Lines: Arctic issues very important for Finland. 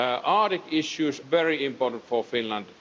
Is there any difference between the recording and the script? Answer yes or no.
no